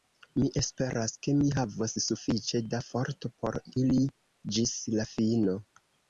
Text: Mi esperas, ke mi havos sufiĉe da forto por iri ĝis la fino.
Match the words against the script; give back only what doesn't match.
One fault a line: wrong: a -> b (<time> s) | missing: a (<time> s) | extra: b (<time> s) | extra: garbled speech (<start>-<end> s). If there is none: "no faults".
no faults